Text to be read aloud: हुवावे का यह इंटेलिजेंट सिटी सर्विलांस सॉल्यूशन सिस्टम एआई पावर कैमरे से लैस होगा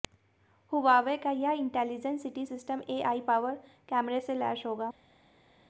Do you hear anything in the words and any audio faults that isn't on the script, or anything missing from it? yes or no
yes